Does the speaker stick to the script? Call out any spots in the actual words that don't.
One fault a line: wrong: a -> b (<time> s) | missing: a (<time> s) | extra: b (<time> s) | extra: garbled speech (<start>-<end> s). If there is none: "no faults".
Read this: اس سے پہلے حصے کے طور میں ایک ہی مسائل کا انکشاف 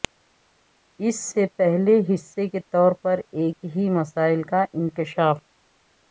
wrong: میں -> پر (3.0 s)